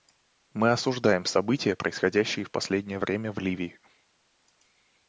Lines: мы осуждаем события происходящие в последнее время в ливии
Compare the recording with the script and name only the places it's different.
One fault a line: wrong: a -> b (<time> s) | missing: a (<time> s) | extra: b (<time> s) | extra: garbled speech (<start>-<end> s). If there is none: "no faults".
no faults